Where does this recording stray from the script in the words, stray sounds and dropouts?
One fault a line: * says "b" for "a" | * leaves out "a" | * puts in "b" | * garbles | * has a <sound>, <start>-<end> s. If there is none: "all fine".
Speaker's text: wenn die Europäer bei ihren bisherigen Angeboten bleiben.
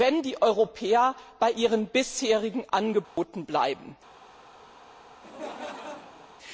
* has a dropout, 3.0-3.2 s
* has a laugh, 5.2-6.3 s